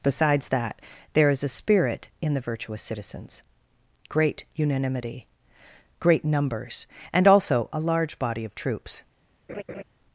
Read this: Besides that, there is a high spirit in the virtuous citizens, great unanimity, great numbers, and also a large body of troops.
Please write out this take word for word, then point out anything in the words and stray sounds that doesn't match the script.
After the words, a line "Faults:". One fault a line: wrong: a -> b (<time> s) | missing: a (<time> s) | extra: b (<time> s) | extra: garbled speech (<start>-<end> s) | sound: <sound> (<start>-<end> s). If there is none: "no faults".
Besides that, there is a spirit in the virtuous citizens, great unanimity, great numbers, and also a large body of troops.
Faults:
missing: high (1.5 s)
sound: laugh (9.5-9.8 s)